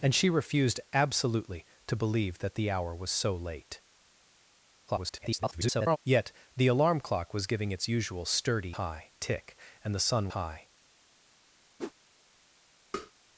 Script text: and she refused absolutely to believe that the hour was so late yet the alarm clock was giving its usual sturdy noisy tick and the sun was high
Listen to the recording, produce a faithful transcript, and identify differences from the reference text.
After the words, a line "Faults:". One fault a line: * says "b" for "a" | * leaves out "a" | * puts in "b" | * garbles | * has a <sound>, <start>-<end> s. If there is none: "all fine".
and she refused absolutely to believe that the hour was so late [garbled] yet the alarm clock was giving its usual sturdy high tick and the sun high
Faults:
* garbles
* says "high" for "noisy"
* leaves out "was"
* has a whoosh, 11.8-11.9 s
* has a tap, 12.9-13.1 s